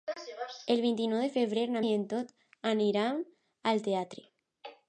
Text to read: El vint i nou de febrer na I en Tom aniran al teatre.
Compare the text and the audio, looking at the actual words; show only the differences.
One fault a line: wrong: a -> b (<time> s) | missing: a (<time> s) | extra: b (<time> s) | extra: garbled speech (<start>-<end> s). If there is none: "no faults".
no faults